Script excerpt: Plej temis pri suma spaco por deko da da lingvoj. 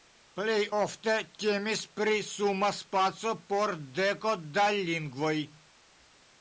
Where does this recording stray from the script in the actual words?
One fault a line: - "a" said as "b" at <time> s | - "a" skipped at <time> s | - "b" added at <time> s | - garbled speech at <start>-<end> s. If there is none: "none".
- "ofte" added at 0.8 s
- "da" skipped at 4.7 s